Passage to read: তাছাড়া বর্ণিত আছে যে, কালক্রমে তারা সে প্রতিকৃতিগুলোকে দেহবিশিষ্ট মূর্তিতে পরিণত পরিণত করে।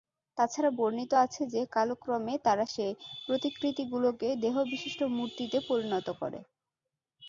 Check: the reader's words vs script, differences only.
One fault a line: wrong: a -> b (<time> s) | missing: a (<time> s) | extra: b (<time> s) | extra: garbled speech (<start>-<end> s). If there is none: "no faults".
missing: পরিণত (6.1 s)